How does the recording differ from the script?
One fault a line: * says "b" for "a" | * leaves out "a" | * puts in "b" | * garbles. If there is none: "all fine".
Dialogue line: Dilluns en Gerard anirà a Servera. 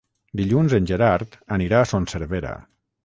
* puts in "Son"